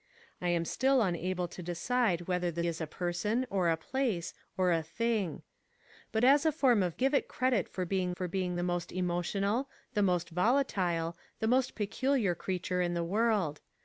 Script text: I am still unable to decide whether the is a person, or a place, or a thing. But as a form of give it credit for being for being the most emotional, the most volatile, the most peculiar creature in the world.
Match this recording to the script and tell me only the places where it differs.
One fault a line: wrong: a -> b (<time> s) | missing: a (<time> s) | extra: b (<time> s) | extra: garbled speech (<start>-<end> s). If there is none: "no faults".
no faults